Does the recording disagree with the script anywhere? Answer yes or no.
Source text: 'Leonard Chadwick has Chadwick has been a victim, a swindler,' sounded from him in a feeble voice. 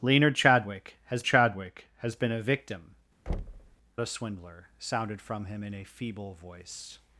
no